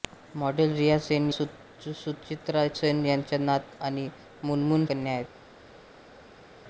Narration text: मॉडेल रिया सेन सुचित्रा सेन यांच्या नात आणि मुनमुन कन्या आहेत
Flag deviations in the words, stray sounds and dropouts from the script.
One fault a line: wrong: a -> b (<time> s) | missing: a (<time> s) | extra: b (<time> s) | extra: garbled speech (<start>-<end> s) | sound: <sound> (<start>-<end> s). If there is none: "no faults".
no faults